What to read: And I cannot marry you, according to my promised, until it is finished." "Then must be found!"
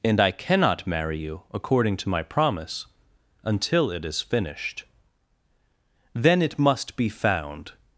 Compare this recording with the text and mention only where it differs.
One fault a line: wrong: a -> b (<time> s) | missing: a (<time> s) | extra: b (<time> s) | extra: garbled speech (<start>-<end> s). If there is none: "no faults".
wrong: promised -> promise (2.2 s)
extra: it (6.4 s)